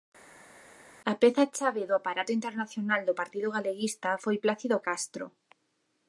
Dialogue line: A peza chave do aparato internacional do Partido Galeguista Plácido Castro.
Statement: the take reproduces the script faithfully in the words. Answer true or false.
false